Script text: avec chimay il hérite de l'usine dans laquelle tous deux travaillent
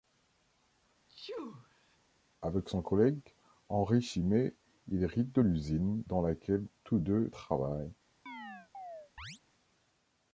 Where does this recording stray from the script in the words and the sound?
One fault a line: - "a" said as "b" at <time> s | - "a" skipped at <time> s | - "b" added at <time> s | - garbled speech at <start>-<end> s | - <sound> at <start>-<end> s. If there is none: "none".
- sneeze at 1.1-2.0 s
- "son collègue henri" added at 2.7 s
- chirp at 8.3-9.4 s